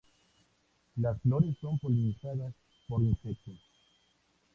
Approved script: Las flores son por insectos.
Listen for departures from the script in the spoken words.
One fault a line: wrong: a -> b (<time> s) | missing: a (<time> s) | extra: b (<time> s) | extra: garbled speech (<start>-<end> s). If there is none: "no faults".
extra: polinizadas (1.7 s)